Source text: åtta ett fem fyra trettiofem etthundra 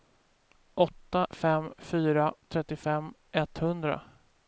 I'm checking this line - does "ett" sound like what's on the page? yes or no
no